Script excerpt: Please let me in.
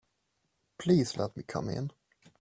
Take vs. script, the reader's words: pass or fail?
fail